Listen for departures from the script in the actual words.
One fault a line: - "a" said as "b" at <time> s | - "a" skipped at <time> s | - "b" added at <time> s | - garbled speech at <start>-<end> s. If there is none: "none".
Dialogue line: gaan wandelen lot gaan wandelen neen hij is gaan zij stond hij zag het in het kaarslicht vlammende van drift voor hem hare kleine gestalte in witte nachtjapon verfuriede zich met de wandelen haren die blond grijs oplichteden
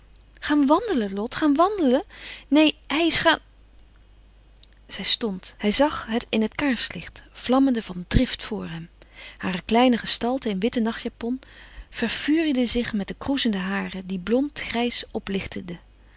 - "wandelen" said as "kroezende" at 13.2 s